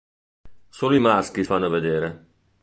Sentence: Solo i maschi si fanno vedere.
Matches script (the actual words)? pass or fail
fail